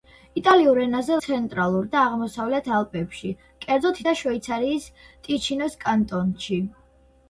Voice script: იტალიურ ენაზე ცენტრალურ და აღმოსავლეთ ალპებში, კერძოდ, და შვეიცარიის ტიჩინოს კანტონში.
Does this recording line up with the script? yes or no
yes